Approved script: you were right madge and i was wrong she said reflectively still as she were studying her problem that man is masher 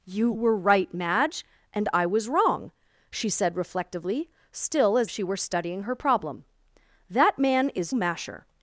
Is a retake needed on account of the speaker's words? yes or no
no